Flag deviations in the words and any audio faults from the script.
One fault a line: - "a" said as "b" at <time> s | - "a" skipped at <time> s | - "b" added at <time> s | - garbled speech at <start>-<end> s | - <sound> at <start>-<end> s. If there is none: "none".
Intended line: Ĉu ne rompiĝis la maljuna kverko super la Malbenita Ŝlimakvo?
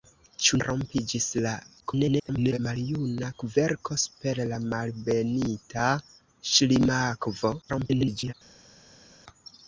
- "ne" skipped at 0.6 s
- garbled speech at 1.8-2.6 s
- garbled speech at 7.6-8.3 s